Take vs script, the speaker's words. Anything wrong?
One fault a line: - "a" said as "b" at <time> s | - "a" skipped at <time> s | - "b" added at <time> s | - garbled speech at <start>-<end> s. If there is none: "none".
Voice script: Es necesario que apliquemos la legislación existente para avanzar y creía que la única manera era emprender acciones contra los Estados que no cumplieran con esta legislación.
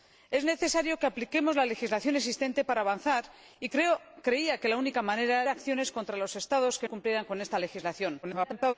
- "era emprender" skipped at 5.4 s
- "no" skipped at 6.9 s
- garbled speech at 8.2-8.7 s